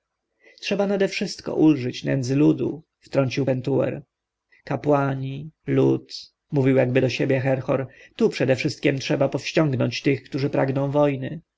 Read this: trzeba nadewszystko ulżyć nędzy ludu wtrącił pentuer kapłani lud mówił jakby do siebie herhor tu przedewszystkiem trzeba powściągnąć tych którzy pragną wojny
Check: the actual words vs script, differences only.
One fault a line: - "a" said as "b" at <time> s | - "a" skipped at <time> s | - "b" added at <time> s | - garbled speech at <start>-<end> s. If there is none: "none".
none